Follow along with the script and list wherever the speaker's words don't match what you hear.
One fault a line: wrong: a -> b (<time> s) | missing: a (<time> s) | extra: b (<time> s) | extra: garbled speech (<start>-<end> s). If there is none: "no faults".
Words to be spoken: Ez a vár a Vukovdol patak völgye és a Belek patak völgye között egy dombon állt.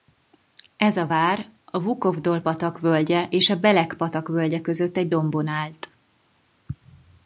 no faults